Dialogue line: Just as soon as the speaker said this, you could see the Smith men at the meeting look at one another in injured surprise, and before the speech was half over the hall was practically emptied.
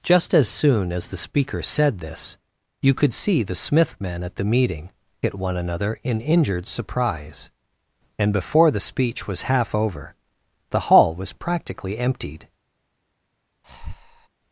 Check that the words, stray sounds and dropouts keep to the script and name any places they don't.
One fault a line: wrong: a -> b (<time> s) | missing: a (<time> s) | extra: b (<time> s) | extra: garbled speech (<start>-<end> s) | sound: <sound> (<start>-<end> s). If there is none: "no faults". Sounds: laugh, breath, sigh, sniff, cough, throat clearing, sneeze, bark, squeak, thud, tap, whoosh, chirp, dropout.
missing: look (4.9 s)
sound: breath (13.6-14.3 s)